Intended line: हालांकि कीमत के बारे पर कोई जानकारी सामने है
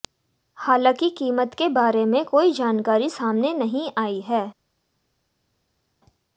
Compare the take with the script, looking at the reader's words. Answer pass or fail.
fail